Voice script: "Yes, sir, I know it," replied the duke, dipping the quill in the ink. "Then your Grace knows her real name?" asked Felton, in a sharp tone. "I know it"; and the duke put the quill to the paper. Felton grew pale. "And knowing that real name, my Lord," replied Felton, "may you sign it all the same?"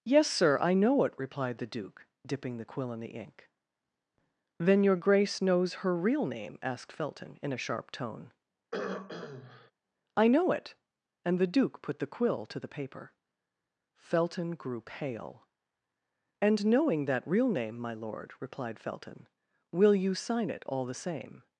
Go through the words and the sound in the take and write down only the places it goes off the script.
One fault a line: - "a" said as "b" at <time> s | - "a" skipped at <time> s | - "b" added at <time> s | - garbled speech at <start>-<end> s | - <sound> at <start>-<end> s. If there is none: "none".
- throat clearing at 8.7-9.7 s
- "may" said as "will" at 19.7 s